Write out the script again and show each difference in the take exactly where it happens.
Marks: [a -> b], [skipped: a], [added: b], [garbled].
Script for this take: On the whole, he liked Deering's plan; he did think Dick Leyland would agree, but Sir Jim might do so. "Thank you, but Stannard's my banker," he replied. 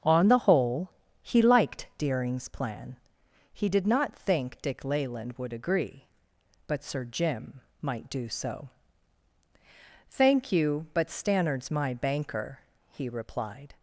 On the whole, he liked Deering's plan; he did [added: not] think Dick Leyland would agree, but Sir Jim might do so. "Thank you, but Stannard's my banker," he replied.